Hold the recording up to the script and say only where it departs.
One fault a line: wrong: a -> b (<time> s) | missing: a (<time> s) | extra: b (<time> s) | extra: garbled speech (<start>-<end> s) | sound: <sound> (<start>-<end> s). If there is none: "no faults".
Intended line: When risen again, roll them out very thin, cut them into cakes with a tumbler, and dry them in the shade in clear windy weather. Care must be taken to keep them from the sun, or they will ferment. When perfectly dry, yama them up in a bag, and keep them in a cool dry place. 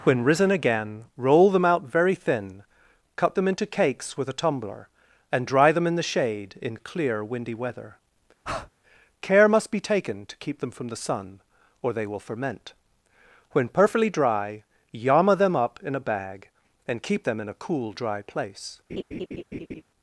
sound: breath (8.4-8.7 s)
sound: laugh (18.9-19.8 s)